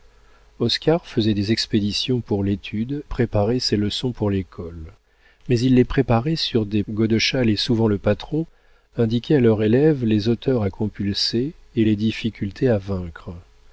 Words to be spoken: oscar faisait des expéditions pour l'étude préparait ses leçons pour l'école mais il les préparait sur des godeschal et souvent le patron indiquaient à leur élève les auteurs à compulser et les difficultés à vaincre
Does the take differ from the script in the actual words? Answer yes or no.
no